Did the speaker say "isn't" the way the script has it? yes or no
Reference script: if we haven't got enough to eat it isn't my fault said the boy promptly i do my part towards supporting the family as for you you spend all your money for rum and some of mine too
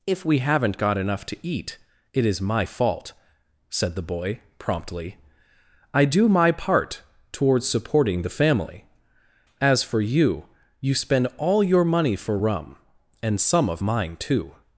no